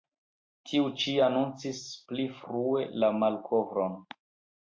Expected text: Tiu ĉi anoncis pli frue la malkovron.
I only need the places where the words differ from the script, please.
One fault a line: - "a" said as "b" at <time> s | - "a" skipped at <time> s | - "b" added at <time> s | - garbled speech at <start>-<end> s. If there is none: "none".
none